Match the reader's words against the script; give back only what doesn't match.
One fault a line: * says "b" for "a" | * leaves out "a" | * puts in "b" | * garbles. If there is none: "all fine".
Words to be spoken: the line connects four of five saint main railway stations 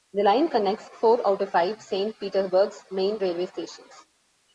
* puts in "out"
* puts in "petersburg's"